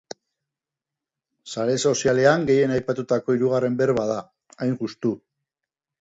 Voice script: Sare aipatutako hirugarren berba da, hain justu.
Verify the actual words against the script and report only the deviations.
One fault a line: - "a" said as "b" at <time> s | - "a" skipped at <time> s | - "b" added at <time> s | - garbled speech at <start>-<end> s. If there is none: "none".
- "sozialean gehien" added at 1.9 s